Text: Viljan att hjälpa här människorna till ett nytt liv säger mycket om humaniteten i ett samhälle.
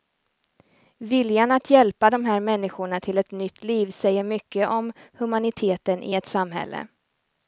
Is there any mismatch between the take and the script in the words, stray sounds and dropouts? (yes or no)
yes